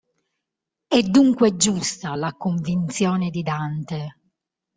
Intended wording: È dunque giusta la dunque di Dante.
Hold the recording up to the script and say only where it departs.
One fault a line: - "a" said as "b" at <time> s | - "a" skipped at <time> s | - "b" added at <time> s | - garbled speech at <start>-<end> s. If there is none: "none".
- "dunque" said as "convinzione" at 2.3 s